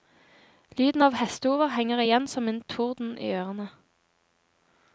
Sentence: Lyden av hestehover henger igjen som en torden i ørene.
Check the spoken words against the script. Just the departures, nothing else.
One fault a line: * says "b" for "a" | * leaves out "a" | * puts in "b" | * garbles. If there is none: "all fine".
all fine